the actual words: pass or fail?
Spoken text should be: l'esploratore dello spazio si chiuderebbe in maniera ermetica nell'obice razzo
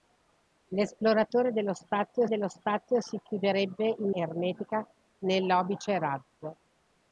fail